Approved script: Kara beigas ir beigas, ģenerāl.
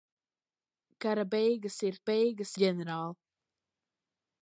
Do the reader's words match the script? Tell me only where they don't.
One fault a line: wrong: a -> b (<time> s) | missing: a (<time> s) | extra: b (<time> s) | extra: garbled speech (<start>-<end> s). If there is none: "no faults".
no faults